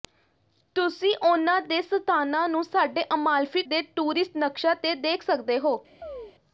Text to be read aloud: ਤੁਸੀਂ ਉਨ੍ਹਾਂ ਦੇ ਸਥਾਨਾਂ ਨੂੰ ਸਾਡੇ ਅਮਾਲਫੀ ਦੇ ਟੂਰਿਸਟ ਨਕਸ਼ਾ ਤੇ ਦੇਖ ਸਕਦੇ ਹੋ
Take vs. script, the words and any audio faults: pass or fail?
fail